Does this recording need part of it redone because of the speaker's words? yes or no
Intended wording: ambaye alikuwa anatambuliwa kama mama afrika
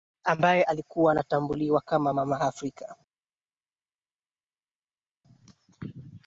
no